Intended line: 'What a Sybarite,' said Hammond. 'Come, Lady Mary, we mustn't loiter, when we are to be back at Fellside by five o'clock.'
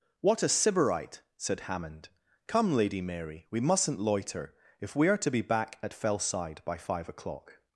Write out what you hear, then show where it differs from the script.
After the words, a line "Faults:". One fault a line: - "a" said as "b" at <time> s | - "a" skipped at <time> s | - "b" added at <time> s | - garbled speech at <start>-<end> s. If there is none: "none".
'What a Sybarite,' said Hammond. 'Come, Lady Mary, we mustn't loiter, if we are to be back at Fellside by five o'clock.'
Faults:
- "when" said as "if" at 4.8 s